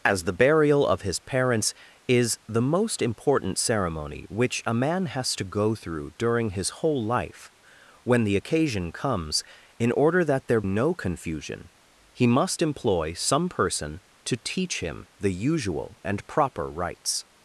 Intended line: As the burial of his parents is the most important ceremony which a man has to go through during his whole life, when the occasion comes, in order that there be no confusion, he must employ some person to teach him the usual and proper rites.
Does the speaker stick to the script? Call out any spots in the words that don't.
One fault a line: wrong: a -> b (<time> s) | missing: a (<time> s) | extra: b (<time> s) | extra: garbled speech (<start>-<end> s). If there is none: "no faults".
missing: be (10.6 s)